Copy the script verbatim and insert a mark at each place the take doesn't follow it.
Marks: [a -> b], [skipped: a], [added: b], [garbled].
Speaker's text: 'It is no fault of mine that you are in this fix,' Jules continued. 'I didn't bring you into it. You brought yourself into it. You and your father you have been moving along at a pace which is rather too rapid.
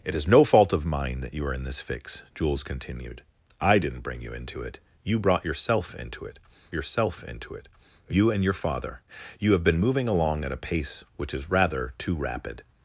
'It is no fault of mine that you are in this fix,' Jules continued. 'I didn't bring you into it. You brought yourself into it. [added: yourself into it] You and your father you have been moving along at a pace which is rather too rapid.